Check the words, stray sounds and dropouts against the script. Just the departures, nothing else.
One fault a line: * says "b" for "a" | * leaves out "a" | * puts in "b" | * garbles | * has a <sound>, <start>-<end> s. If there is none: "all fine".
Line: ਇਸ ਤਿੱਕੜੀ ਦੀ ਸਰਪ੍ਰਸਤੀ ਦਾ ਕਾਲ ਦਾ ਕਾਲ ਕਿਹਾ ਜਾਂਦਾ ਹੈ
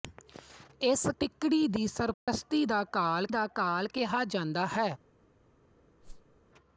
* has a dropout, 2.1-2.3 s
* has a whoosh, 6.0-6.4 s